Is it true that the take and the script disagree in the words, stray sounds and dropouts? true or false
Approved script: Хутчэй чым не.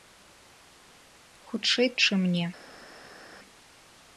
false